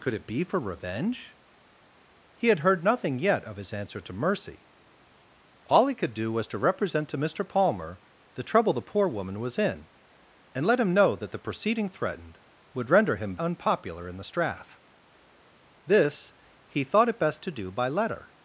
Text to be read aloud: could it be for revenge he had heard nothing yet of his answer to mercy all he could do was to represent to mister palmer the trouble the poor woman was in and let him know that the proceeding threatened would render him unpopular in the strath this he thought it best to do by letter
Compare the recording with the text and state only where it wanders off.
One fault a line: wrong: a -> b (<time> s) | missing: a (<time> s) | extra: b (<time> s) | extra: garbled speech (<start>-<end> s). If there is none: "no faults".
no faults